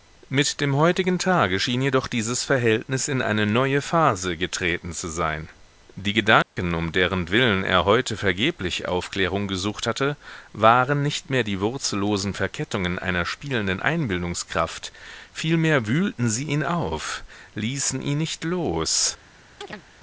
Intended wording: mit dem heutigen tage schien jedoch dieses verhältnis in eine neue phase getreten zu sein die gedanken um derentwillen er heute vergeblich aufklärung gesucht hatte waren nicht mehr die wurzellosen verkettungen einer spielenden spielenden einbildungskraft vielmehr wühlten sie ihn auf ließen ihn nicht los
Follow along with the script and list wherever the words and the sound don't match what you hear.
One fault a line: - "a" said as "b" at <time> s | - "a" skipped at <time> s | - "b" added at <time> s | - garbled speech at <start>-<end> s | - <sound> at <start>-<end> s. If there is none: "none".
- dropout at 6.4-6.6 s
- "spielenden" skipped at 13.8 s
- chirp at 19.6-19.8 s